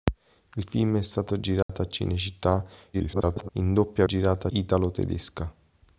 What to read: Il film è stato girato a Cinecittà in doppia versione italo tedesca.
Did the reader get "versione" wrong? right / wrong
wrong